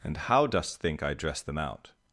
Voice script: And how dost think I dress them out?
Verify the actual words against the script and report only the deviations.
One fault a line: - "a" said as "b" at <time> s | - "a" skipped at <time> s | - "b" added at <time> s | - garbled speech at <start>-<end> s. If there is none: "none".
none